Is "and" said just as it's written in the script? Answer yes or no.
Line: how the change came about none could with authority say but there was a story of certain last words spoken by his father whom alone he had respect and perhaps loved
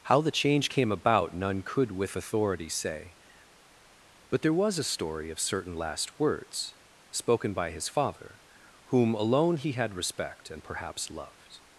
yes